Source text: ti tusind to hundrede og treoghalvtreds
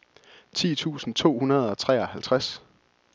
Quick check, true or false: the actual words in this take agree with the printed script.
true